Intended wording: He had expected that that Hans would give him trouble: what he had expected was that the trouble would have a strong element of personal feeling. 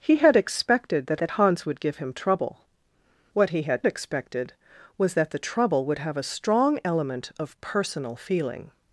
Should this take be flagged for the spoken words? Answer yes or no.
no